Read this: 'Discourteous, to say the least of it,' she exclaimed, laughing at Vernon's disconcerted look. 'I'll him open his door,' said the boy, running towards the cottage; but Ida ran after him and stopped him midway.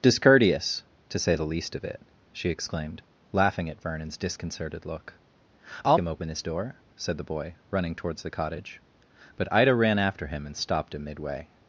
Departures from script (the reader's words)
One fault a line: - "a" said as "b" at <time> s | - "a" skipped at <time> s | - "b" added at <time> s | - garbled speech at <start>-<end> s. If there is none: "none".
none